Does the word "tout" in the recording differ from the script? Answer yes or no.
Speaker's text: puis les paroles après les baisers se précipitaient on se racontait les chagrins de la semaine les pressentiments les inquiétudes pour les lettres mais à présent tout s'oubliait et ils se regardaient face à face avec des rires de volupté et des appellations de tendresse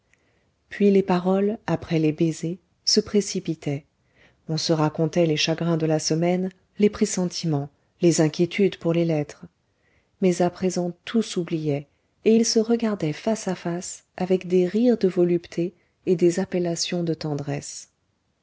no